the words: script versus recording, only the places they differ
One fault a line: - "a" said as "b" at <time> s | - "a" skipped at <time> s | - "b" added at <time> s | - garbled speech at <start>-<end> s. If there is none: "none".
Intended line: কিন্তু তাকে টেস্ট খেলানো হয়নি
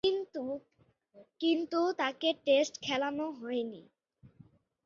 none